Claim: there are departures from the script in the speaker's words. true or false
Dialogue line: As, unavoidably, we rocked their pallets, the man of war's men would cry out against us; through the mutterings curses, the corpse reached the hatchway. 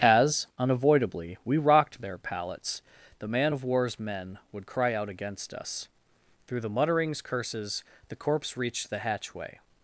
false